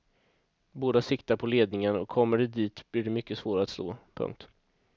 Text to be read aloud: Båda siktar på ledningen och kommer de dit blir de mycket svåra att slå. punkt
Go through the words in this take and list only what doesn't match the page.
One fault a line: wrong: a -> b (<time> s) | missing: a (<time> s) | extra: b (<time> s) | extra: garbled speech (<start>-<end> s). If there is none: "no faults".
no faults